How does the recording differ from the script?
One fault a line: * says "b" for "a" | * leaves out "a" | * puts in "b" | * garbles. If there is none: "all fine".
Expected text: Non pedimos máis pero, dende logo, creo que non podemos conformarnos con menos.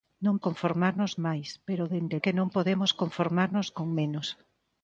* says "conformarnos" for "pedimos"
* leaves out "logo creo"